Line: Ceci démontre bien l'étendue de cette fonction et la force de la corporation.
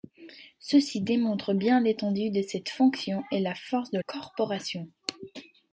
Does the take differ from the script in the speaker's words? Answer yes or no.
yes